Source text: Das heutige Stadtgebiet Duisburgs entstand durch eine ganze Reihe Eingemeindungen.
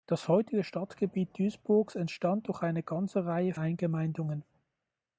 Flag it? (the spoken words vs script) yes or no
no